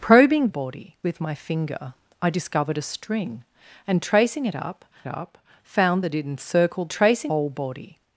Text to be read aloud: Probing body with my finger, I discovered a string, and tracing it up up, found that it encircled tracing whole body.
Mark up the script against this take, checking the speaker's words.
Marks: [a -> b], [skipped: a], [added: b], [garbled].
Probing body with my finger, I discovered a string, and tracing it up up, found that it encircled tracing whole body.